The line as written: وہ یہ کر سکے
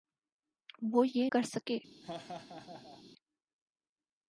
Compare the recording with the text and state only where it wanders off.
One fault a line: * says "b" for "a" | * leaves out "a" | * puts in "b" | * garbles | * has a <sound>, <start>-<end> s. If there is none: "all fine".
* has a laugh, 2.0-3.0 s